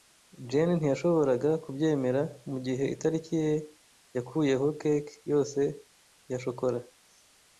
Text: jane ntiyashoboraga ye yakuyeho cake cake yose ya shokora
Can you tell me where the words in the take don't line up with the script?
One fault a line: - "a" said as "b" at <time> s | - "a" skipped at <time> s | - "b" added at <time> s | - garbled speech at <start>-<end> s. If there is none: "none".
- "kubyemera mugihe itariki" added at 1.6 s
- "cake" skipped at 5.1 s